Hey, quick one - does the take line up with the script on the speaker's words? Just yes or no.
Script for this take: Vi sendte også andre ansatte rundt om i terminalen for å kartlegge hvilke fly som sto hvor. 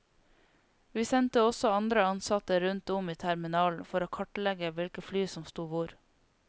yes